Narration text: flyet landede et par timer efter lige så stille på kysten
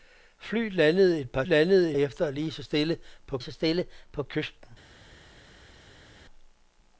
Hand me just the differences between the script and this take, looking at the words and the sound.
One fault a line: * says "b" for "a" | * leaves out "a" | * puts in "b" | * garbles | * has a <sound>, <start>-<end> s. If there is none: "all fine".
* says "landede" for "timer"
* puts in "så stille på"